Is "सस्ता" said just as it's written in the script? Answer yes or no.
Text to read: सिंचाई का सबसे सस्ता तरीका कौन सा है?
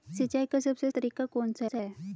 no